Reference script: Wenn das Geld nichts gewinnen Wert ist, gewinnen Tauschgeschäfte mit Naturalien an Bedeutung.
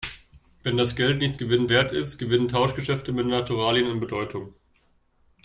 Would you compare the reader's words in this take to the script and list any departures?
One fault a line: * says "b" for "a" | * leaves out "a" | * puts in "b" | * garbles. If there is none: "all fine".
all fine